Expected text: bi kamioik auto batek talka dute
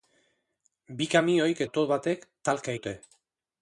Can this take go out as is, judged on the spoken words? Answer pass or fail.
pass